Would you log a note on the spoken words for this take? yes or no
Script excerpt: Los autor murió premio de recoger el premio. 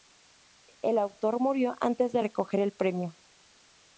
yes